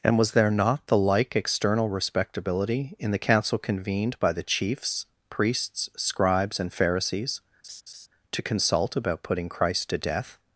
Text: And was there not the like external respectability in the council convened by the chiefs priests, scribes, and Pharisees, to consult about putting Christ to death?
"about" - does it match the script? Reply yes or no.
yes